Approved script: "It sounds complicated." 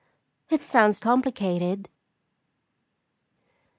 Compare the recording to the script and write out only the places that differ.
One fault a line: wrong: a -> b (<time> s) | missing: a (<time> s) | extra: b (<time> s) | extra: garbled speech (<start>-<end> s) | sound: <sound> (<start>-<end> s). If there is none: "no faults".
no faults